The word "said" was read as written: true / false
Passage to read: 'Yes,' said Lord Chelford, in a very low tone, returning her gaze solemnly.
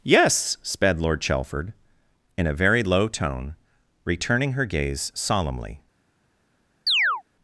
false